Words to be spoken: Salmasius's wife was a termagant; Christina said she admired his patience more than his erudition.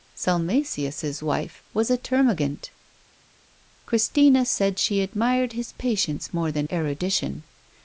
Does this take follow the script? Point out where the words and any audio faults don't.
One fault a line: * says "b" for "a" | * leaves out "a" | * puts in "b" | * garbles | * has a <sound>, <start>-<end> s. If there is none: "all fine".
* leaves out "his"